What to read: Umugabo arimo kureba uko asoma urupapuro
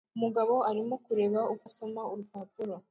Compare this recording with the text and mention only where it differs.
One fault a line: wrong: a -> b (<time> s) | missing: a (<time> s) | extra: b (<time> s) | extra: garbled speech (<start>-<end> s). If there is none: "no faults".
no faults